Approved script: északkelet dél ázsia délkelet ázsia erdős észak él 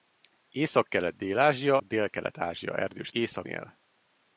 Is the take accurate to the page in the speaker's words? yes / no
yes